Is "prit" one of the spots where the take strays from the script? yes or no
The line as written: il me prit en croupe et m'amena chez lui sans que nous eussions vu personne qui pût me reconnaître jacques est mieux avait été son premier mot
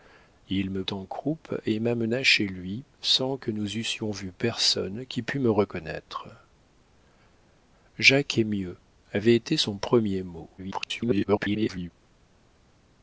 yes